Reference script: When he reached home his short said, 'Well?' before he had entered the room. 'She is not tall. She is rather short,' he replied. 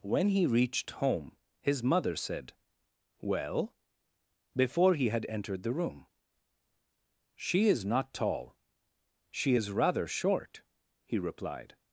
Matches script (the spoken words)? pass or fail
fail